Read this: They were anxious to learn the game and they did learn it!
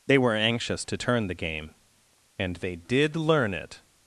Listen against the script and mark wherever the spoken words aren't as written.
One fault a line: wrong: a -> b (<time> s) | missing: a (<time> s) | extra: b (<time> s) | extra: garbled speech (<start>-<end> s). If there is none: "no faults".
wrong: learn -> turn (0.9 s)